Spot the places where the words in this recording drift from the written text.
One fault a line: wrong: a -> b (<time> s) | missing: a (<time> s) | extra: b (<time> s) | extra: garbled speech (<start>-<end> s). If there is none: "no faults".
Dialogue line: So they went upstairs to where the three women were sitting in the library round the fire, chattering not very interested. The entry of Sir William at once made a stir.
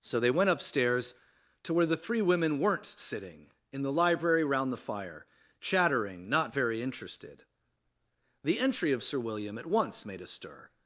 wrong: were -> weren't (2.6 s)